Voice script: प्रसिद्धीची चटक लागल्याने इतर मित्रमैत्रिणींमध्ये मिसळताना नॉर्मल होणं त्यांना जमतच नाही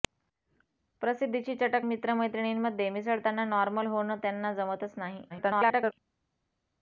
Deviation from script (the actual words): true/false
true